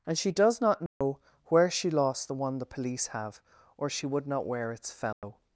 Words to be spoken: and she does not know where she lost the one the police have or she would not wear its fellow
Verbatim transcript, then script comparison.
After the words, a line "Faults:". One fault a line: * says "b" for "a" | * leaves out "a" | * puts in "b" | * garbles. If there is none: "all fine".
and she does not know where she lost the one the police have or she would not wear its fellow
Faults:
all fine